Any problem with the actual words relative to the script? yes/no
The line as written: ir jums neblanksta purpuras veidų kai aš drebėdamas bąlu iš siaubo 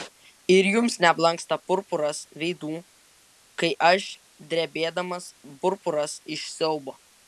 yes